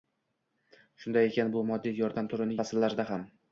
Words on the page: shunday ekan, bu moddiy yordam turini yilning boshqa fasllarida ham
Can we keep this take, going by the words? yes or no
no